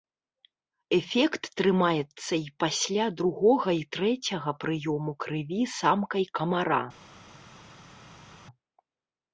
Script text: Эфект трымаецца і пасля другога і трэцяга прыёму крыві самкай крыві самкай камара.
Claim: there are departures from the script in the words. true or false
true